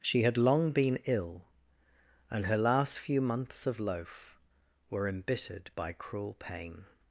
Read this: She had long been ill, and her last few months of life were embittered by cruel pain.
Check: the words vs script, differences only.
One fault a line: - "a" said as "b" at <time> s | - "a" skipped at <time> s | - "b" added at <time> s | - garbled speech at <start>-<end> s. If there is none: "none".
- "life" said as "loaf" at 3.8 s